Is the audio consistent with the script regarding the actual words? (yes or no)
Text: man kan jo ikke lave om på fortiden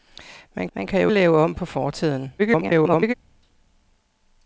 no